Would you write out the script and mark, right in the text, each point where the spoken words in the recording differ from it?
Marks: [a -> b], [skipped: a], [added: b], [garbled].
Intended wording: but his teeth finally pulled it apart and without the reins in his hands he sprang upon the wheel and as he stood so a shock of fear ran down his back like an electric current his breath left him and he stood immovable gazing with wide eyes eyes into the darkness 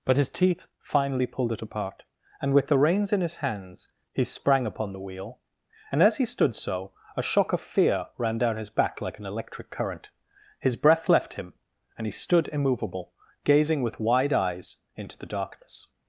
but his teeth finally pulled it apart and [without -> with] the reins in his hands he sprang upon the wheel and as he stood so a shock of fear ran down his back like an electric current his breath left him and he stood immovable gazing with wide eyes [skipped: eyes] into the darkness